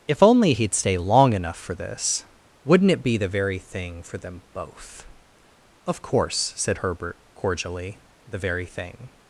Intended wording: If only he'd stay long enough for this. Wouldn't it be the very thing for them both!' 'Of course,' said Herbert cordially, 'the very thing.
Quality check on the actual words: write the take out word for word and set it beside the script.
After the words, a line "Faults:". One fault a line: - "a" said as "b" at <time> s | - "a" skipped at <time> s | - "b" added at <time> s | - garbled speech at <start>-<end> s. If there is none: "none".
If only he'd stay long enough for this. Wouldn't it be the very thing for them both!' 'Of course,' said Herbert cordially, 'the very thing.
Faults:
none